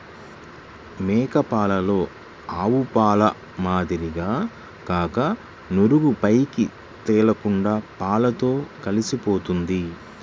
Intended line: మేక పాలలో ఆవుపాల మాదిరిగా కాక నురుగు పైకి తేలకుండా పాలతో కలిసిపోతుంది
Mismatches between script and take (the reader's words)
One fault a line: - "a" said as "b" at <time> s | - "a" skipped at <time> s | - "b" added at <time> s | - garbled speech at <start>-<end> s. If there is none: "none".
none